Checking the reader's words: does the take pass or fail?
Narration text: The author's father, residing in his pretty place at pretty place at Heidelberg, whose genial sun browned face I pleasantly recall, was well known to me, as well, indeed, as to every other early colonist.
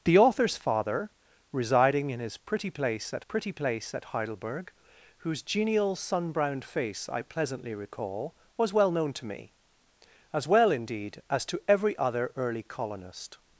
pass